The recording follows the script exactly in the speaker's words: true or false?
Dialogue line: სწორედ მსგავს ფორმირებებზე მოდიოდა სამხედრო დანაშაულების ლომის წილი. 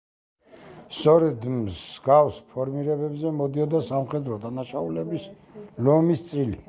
true